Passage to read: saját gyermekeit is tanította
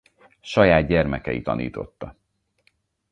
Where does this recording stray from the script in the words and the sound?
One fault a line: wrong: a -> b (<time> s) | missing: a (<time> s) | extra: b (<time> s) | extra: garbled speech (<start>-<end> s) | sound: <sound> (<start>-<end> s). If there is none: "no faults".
missing: is (1.5 s)